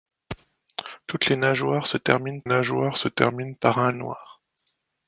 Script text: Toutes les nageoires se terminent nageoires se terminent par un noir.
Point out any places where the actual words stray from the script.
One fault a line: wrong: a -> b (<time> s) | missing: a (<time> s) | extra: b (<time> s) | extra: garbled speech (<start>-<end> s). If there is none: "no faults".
no faults